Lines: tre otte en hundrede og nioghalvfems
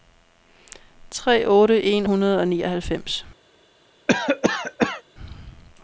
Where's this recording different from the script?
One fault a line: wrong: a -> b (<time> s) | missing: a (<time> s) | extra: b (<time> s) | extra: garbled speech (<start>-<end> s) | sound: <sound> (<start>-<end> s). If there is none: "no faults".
sound: cough (4.1-5.0 s)